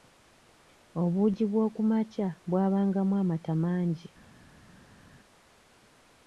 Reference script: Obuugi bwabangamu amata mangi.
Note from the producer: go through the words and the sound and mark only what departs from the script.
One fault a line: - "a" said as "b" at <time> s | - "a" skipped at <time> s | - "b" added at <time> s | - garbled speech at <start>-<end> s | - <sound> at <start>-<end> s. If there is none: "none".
- "bw'okumakya" added at 1.5 s